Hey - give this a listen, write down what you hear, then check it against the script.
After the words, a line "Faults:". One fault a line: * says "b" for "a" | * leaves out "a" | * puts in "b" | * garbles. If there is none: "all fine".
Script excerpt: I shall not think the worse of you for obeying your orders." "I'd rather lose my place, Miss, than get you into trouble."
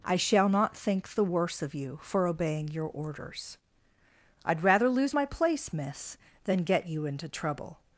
I shall not think the worse of you for obeying your orders." "I'd rather lose my place, Miss, than get you into trouble."
Faults:
all fine